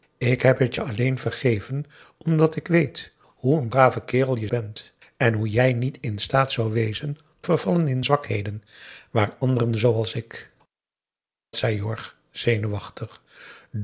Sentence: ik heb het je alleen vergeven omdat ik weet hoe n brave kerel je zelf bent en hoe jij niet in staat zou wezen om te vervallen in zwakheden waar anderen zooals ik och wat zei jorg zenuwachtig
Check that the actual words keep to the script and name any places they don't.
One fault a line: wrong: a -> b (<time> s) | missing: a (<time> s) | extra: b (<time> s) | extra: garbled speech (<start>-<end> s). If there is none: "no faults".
missing: zelf (4.5 s)
missing: om te (7.2 s)
missing: och wat (10.5 s)